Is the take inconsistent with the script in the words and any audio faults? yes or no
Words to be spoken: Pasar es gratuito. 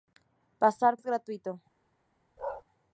yes